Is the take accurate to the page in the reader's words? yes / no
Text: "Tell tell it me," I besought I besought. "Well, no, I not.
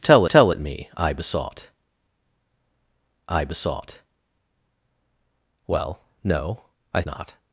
yes